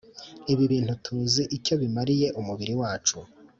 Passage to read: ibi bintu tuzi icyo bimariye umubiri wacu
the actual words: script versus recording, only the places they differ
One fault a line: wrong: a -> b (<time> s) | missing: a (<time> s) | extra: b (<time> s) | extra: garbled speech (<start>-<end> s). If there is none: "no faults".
no faults